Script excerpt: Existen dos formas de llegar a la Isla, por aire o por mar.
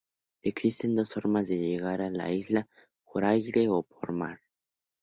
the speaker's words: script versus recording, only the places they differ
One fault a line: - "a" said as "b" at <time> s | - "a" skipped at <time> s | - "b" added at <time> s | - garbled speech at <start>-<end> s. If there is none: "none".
none